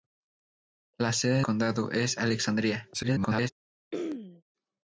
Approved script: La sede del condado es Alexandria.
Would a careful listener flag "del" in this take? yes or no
yes